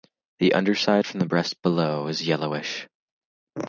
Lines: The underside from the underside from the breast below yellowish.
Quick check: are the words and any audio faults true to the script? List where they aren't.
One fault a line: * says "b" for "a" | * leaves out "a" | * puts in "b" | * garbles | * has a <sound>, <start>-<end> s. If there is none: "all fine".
* leaves out "underside from the"
* puts in "is"